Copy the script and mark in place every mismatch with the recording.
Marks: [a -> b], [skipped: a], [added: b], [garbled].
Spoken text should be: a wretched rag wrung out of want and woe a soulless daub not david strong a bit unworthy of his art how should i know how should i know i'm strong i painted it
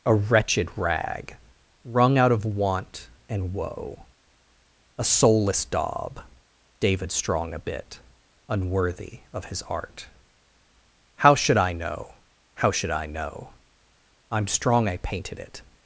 a wretched rag wrung out of want and woe a soulless daub [skipped: not] david strong a bit unworthy of his art how should i know how should i know i'm strong i painted it